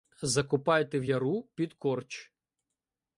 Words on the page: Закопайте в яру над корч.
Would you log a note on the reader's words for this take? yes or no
yes